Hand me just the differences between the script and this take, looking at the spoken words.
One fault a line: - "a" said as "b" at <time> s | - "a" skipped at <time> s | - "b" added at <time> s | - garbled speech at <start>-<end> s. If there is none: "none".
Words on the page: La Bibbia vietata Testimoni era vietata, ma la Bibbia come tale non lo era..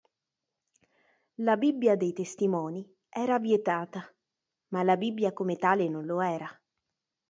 - "vietata" said as "dei" at 1.9 s